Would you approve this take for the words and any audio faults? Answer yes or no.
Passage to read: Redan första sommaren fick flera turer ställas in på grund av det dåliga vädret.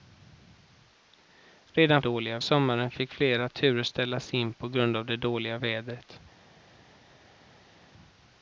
no